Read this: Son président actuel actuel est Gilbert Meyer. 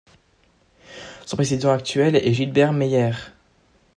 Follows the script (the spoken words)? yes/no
no